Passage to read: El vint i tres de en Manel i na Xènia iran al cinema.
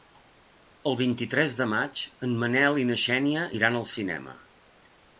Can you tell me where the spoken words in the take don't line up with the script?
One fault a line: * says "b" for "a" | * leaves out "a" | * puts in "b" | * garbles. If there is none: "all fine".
* puts in "maig"